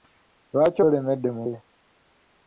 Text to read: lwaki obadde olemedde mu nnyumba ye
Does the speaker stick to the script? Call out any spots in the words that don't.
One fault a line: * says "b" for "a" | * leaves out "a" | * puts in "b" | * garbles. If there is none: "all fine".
* leaves out "obadde"
* leaves out "nnyumba"